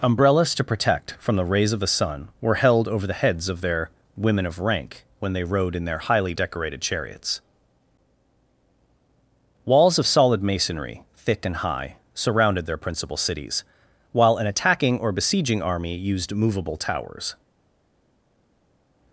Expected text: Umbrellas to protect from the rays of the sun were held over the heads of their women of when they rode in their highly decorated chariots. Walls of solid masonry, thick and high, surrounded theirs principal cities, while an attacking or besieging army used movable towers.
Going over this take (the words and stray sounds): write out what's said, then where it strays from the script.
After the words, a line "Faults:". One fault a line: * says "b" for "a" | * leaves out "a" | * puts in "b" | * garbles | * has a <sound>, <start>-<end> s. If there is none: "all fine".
Umbrellas to protect from the rays of the sun were held over the heads of their women of rank when they rode in their highly decorated chariots. Walls of solid masonry, thick and high, surrounded their principal cities, while an attacking or besieging army used movable towers.
Faults:
* puts in "rank"
* says "their" for "theirs"